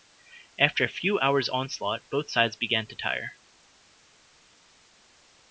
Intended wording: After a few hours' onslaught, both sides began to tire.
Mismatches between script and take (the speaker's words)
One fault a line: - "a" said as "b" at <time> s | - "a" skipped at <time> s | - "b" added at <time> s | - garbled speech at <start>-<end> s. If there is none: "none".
none